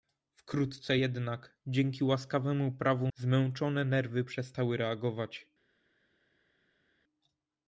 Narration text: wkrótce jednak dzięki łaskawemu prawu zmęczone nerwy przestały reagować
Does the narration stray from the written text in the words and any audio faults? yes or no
no